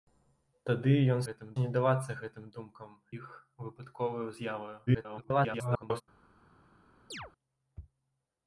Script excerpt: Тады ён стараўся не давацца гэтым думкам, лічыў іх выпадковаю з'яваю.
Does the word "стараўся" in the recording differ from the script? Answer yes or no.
yes